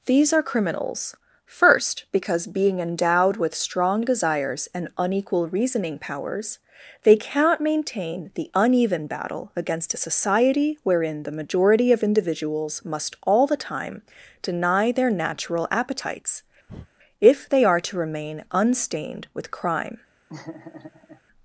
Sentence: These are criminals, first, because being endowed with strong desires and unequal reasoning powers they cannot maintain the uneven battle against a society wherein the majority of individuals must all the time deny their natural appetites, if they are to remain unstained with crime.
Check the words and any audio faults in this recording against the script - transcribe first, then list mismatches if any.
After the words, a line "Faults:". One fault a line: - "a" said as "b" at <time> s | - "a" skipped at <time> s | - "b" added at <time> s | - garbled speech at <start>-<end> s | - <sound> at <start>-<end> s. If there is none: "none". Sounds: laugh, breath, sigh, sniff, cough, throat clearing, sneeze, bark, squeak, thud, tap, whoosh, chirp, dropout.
These are criminals, first, because being endowed with strong desires and unequal reasoning powers they cannot maintain the uneven battle against a society wherein the majority of individuals must all the time deny their natural appetites, if they are to remain unstained with crime.
Faults:
- breath at 16.7-16.9 s
- laugh at 20.3-21.2 s